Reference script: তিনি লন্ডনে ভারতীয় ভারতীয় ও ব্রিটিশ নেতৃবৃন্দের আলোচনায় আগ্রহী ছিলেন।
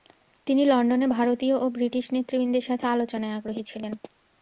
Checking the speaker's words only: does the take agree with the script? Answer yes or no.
no